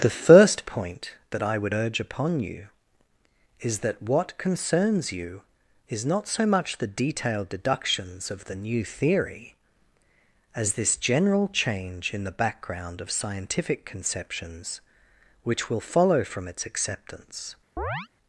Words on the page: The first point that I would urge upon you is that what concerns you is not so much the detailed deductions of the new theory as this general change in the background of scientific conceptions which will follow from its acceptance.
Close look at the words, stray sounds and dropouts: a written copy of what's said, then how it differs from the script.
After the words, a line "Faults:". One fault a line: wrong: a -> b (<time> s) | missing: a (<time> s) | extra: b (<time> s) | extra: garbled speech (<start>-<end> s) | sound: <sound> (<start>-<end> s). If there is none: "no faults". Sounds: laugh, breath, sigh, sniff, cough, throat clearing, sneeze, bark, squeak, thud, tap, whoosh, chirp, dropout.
The first point that I would urge upon you is that what concerns you is not so much the detailed deductions of the new theory as this general change in the background of scientific conceptions which will follow from its acceptance.
Faults:
sound: chirp (17.8-18.1 s)